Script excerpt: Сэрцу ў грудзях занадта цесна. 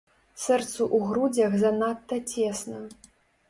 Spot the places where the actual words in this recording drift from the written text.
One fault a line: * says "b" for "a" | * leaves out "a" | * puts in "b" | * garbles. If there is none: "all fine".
all fine